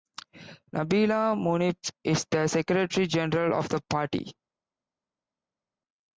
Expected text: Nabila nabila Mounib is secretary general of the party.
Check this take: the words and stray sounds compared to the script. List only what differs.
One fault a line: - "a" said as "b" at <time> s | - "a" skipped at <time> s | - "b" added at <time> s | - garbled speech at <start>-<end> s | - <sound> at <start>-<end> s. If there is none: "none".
- "nabila" skipped at 1.4 s
- "the" added at 2.3 s